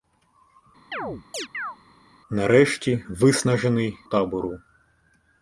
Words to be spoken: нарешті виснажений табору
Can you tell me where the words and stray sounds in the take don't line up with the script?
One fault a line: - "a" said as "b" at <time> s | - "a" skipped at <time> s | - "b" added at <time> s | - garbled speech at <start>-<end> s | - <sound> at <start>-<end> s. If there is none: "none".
- chirp at 0.9-1.8 s